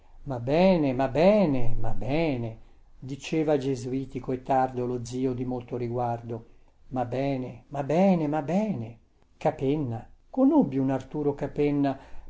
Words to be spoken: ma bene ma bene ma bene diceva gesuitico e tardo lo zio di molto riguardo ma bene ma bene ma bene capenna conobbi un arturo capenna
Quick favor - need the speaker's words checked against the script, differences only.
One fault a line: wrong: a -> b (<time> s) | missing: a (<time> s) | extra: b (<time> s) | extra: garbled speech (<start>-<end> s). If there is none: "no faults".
no faults